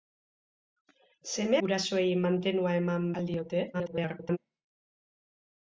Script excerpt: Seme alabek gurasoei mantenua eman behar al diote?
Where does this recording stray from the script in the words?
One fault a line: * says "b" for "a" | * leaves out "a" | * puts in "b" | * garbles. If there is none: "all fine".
* leaves out "alabek"
* leaves out "behar"
* garbles